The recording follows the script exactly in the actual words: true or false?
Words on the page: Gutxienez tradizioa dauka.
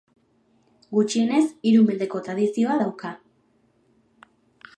false